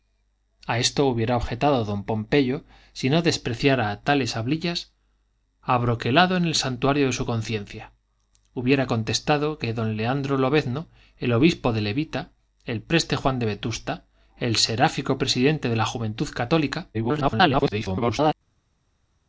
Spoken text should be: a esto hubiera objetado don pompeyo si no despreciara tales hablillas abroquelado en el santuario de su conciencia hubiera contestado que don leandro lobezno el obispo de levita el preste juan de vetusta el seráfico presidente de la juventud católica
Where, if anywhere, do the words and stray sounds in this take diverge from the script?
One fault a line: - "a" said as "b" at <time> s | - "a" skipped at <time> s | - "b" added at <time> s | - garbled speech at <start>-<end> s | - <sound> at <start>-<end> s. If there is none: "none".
- garbled speech at 16.9-18.3 s